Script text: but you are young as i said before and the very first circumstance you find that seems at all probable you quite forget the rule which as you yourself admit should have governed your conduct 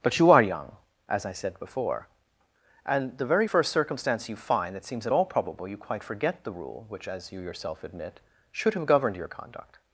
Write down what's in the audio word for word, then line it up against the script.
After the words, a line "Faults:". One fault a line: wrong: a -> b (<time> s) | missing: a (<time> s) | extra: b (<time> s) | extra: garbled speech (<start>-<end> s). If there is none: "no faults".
but you are young as i said before and the very first circumstance you find that seems at all probable you quite forget the rule which as you yourself admit should have governed your conduct
Faults:
no faults